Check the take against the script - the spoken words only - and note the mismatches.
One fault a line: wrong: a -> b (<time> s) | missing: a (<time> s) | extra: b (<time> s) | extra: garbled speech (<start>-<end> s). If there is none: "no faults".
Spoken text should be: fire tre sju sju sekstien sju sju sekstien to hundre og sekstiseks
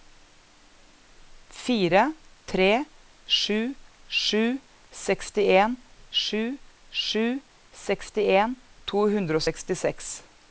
no faults